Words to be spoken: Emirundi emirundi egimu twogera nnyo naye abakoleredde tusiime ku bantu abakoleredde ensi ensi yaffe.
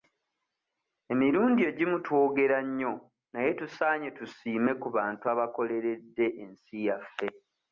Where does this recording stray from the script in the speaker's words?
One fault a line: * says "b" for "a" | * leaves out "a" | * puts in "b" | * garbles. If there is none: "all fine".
* leaves out "emirundi"
* says "tusaanye" for "abakoleredde"
* leaves out "ensi"